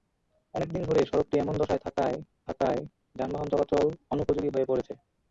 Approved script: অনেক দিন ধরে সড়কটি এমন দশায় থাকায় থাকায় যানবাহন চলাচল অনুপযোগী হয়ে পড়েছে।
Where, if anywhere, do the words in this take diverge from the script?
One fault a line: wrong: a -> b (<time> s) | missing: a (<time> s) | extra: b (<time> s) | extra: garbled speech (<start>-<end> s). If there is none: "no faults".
no faults